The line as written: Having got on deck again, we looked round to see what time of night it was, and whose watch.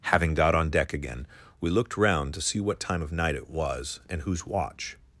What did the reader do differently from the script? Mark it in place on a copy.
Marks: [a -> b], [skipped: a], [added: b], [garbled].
Having got on deck again, we looked round to see what time of night it was, and whose watch.